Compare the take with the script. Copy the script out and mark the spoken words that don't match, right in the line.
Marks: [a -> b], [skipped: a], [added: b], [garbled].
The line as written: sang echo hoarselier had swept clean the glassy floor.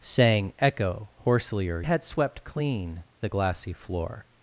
sang echo hoarselier had swept clean the glassy floor.